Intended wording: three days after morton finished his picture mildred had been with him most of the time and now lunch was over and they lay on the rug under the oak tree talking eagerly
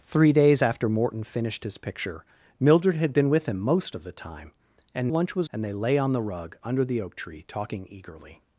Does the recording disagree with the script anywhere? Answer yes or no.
yes